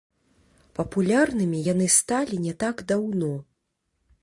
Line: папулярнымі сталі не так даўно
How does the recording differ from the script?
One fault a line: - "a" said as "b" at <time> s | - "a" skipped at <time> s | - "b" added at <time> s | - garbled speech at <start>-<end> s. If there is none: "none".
- "яны" added at 1.7 s